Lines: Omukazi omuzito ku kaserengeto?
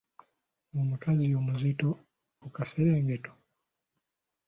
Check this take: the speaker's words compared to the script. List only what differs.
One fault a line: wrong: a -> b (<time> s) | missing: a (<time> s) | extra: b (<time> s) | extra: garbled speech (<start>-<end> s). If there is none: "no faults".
no faults